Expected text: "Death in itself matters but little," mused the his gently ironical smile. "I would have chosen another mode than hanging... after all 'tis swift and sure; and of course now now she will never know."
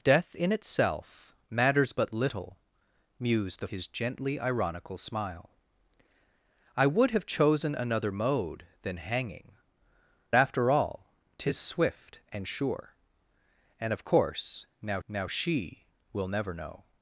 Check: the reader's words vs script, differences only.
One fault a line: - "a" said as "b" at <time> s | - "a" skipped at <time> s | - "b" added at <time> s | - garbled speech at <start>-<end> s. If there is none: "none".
none